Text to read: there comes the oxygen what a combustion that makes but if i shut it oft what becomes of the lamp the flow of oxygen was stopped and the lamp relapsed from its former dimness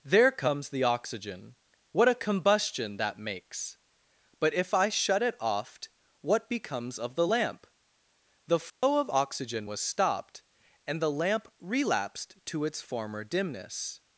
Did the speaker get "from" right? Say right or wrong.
wrong